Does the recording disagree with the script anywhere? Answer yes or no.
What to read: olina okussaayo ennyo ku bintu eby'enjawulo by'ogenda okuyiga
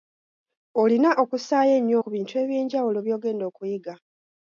no